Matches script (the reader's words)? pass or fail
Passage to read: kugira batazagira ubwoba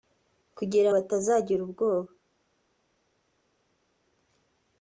pass